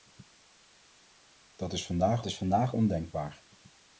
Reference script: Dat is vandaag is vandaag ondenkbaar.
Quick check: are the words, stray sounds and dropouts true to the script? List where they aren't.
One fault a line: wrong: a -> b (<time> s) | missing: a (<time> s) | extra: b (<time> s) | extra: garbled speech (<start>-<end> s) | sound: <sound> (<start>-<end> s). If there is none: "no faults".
no faults